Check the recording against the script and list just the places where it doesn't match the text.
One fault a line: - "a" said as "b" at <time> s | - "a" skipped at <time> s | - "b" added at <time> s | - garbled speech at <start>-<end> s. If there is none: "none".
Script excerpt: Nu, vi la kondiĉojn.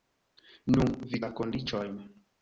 none